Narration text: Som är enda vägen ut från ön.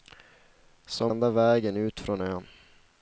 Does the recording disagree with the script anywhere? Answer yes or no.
yes